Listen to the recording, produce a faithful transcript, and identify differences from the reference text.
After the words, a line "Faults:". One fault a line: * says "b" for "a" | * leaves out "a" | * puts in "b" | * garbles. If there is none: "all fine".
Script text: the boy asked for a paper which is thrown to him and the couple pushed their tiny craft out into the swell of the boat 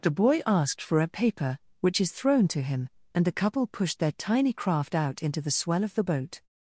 the boy asked for a paper which is thrown to him and the couple pushed their tiny craft out into the swell of the boat
Faults:
all fine